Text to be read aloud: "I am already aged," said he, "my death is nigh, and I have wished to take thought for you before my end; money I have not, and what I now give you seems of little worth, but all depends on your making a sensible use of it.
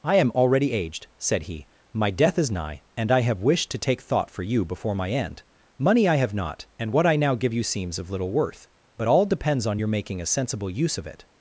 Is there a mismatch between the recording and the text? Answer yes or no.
no